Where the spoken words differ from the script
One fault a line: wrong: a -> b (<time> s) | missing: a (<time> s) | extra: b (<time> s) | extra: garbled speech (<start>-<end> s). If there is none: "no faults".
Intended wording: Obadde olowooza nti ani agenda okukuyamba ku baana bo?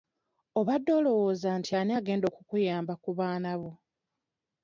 no faults